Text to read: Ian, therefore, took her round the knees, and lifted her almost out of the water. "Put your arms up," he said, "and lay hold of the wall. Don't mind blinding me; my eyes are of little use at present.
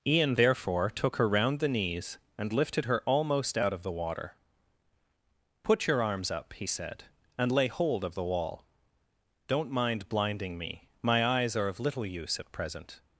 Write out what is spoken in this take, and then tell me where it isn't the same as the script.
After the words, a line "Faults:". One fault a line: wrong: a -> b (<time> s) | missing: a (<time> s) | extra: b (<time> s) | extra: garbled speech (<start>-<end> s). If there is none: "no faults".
Ian, therefore, took her round the knees, and lifted her almost out of the water. "Put your arms up," he said, "and lay hold of the wall. Don't mind blinding me; my eyes are of little use at present.
Faults:
no faults